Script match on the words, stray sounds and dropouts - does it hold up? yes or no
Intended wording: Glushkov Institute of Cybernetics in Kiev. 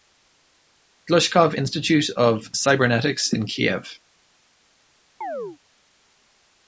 no